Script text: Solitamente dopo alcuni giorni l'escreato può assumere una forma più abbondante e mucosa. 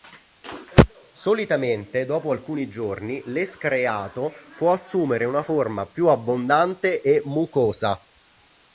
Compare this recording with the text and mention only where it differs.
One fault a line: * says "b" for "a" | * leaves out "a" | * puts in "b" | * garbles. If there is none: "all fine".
all fine